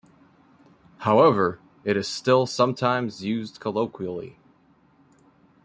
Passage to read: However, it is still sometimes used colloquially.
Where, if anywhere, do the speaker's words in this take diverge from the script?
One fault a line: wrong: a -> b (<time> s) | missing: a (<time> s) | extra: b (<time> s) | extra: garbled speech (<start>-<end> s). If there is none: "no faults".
no faults